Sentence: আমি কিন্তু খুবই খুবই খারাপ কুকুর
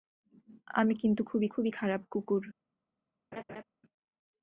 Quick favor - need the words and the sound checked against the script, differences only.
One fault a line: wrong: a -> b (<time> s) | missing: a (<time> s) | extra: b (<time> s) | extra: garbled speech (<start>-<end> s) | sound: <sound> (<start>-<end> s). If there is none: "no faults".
sound: laugh (3.3-3.6 s)